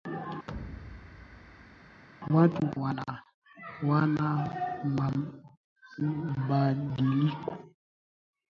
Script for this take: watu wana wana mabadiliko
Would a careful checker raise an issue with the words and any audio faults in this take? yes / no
yes